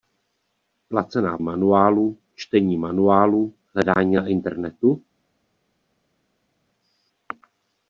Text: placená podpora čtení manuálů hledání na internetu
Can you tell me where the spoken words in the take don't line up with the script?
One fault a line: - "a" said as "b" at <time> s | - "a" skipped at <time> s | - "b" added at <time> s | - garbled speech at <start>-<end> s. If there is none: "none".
- "podpora" said as "manuálů" at 1.4 s